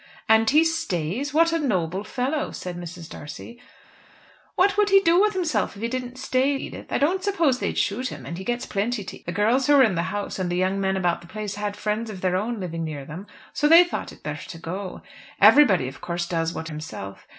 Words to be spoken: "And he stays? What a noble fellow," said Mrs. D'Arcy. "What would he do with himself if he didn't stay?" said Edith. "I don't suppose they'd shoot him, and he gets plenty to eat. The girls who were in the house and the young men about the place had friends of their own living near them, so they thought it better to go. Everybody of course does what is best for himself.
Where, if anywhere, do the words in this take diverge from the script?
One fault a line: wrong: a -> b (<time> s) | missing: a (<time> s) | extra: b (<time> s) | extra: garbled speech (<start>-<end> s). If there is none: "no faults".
missing: said (6.6 s)
missing: eat (9.3 s)
missing: is best for (16.7 s)